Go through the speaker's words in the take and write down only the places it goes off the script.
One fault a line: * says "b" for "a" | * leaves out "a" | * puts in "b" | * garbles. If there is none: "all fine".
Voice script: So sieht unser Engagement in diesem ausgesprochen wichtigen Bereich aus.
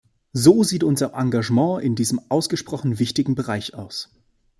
all fine